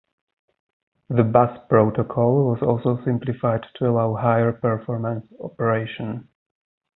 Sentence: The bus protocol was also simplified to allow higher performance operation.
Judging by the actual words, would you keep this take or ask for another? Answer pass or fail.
pass